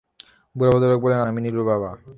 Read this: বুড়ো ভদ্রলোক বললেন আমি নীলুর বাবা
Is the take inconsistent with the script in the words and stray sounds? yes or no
no